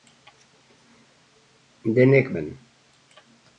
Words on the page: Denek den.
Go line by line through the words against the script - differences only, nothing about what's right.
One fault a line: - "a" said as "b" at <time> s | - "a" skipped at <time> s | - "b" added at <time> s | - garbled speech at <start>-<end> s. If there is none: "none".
none